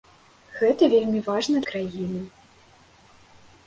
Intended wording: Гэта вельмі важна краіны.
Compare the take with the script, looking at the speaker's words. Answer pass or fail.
pass